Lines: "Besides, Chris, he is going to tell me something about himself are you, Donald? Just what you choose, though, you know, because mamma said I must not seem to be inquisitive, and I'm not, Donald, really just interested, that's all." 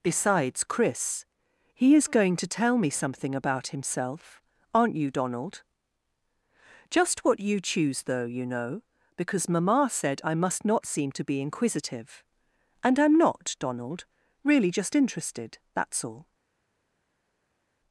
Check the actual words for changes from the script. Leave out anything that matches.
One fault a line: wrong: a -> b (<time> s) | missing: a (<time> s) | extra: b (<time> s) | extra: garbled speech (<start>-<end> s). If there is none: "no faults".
wrong: are -> aren't (4.7 s)